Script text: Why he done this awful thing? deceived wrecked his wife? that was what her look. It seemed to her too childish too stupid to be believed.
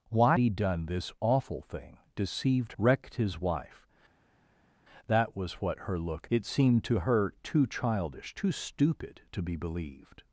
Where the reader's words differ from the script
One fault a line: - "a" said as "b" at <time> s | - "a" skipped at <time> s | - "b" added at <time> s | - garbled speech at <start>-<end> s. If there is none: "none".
none